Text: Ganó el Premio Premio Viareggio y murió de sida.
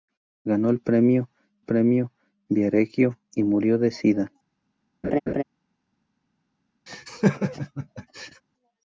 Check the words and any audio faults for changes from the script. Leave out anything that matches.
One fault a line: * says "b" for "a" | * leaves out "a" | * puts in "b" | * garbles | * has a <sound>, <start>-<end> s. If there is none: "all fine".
* has a laugh, 5.0-5.4 s
* has a laugh, 6.9-8.4 s